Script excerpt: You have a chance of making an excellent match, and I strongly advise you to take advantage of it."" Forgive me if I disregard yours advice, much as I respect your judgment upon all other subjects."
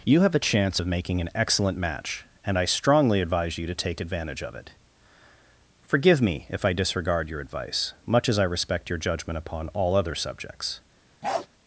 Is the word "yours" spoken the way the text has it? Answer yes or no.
no